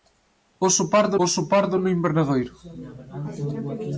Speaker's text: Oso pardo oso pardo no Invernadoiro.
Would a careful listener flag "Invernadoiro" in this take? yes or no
no